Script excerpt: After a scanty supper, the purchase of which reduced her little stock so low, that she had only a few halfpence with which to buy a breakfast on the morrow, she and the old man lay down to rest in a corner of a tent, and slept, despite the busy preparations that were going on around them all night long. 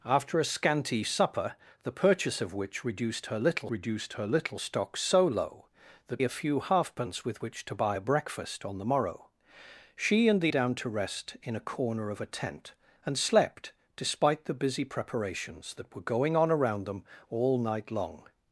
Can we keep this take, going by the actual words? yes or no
no